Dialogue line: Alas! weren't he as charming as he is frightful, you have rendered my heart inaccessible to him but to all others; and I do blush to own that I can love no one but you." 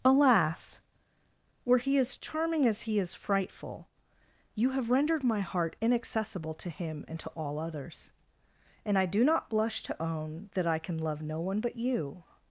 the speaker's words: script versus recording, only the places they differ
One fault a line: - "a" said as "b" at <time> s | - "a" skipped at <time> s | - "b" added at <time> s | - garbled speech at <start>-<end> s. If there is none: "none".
- "weren't" said as "were" at 1.6 s
- "but" said as "and" at 7.1 s
- "not" added at 9.2 s